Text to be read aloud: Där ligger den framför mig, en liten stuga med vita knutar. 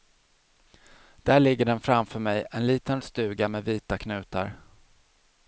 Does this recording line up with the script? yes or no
yes